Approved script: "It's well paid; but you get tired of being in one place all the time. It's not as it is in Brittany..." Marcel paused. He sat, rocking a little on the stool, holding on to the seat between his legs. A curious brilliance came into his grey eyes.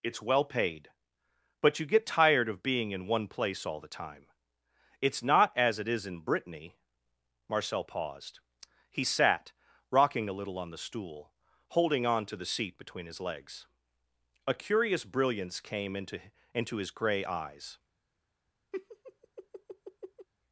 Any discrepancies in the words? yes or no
yes